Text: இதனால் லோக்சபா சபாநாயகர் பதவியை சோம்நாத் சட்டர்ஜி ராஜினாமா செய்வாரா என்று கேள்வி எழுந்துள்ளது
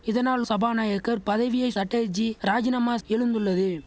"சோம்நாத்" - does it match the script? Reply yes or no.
no